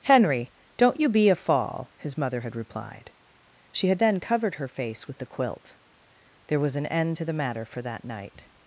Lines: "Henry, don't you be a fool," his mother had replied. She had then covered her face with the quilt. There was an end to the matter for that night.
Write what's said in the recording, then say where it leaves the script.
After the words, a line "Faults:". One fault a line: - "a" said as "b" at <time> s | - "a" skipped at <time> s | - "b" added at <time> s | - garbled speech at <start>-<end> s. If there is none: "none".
"Henry, don't you be a fall," his mother had replied. She had then covered her face with the quilt. There was an end to the matter for that night.
Faults:
- "fool" said as "fall" at 1.4 s